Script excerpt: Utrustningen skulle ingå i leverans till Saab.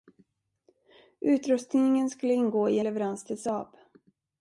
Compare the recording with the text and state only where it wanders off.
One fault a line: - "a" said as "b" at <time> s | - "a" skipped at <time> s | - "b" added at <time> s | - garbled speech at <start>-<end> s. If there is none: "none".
none